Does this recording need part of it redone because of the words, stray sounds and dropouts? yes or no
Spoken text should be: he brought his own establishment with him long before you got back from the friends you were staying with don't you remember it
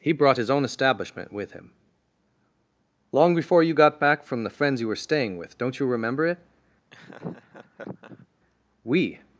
yes